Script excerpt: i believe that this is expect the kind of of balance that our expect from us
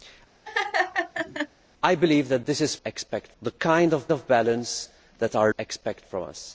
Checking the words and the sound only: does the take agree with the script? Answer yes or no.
no